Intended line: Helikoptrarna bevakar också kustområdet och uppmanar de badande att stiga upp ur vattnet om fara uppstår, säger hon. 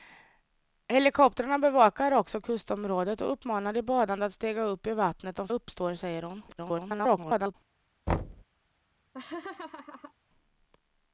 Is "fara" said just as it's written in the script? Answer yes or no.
no